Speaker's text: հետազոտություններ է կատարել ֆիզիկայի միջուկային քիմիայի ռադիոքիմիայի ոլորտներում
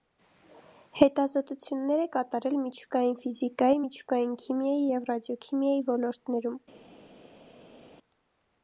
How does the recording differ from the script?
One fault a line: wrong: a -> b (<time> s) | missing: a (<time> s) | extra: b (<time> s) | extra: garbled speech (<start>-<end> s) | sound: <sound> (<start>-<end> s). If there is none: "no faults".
extra: միջուկային (2.6 s)
extra: և (4.9 s)